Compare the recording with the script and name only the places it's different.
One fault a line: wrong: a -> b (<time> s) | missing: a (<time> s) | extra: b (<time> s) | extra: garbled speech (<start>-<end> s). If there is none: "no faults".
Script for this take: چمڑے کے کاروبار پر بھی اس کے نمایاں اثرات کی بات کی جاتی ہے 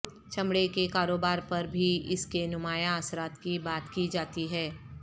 no faults